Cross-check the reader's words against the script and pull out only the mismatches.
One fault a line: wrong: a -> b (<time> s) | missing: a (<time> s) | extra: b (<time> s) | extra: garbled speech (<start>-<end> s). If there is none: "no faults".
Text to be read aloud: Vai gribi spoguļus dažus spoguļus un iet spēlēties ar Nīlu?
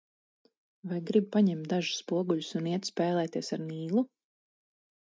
wrong: spoguļus -> paņemt (1.4 s)